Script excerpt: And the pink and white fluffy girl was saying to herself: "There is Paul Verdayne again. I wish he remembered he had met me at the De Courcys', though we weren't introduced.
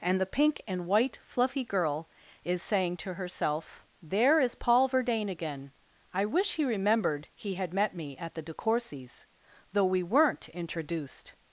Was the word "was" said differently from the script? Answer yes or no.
yes